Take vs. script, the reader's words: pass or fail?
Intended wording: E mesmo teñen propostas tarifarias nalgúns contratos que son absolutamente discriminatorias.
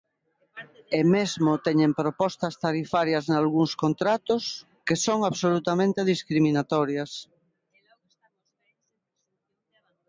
pass